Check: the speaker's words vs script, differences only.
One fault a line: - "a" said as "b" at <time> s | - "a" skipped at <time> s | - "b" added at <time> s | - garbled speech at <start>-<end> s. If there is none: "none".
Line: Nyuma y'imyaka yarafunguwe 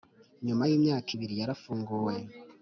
- "ibiri" added at 1.1 s